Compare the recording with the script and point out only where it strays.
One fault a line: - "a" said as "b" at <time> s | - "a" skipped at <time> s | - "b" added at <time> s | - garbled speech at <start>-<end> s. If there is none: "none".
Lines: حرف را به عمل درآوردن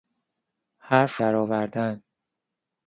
- "را به عمل" skipped at 1.2 s